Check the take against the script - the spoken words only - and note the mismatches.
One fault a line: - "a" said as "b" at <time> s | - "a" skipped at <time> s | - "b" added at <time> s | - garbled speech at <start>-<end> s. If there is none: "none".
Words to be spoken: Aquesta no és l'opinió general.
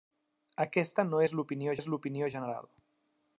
- "és l'opinió" added at 1.8 s